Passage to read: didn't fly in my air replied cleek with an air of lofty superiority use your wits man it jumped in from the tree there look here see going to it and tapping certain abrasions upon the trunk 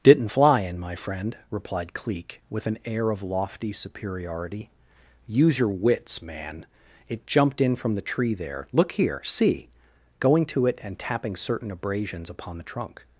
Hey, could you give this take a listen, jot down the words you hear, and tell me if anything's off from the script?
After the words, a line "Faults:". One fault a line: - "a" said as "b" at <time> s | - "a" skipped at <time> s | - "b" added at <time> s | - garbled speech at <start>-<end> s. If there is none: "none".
didn't fly in my friend replied cleek with an air of lofty superiority use your wits man it jumped in from the tree there look here see going to it and tapping certain abrasions upon the trunk
Faults:
- "air" said as "friend" at 0.9 s